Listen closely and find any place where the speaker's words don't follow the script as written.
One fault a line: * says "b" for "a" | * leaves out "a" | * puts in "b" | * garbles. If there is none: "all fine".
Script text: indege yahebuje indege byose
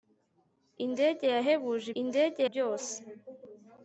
all fine